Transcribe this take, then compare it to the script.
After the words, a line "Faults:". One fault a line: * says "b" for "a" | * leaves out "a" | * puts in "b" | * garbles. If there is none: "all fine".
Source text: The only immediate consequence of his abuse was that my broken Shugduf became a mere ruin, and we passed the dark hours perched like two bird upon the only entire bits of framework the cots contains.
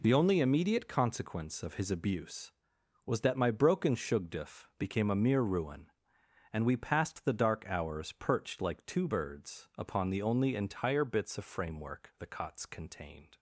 The only immediate consequence of his abuse was that my broken Shugduf became a mere ruin, and we passed the dark hours perched like two birds upon the only entire bits of framework the cots contained.
Faults:
* says "birds" for "bird"
* says "contained" for "contains"